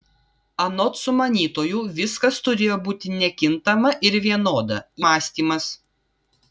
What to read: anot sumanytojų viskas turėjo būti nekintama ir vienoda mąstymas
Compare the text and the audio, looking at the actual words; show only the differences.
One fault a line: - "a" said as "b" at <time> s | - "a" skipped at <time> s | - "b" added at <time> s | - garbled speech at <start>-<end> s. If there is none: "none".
none